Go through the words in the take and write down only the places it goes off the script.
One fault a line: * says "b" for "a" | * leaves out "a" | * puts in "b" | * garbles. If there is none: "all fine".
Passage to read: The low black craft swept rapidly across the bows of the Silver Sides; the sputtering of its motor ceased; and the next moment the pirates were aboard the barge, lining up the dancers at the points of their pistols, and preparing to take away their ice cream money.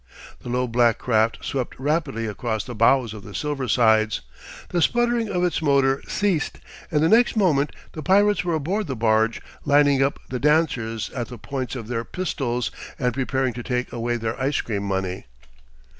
all fine